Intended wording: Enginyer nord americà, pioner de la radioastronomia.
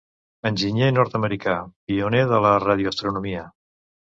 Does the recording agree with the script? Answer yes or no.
yes